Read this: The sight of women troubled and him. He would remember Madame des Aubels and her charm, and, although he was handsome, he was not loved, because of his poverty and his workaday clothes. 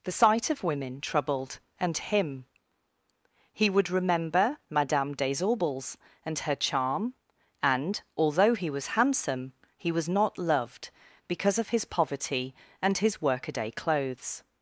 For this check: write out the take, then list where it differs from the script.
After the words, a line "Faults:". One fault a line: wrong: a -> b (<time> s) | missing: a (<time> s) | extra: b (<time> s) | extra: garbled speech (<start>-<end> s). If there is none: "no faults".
The sight of women troubled and him. He would remember Madame des Aubels and her charm, and, although he was handsome, he was not loved, because of his poverty and his workaday clothes.
Faults:
no faults